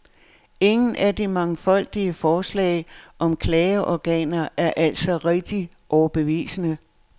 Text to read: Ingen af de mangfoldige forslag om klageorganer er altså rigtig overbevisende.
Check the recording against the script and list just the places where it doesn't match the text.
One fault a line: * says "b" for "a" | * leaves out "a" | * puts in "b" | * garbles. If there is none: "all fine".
all fine